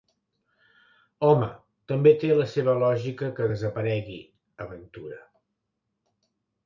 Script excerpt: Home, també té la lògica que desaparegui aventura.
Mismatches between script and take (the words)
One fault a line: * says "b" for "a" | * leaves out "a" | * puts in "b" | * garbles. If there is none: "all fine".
* puts in "seva"